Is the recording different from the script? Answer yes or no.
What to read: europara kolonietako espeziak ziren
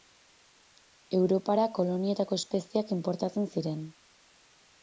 yes